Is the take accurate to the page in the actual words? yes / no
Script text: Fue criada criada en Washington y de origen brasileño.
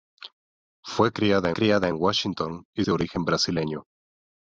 yes